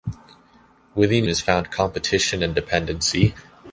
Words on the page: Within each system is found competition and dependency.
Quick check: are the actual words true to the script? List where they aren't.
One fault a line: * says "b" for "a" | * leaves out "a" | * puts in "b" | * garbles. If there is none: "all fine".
* leaves out "each system"